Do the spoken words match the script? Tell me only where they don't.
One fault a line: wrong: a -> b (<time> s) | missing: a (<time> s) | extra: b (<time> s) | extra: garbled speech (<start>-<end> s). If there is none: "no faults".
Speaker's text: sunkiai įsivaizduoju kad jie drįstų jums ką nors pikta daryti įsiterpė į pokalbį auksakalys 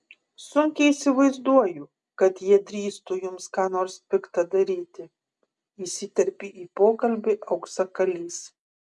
no faults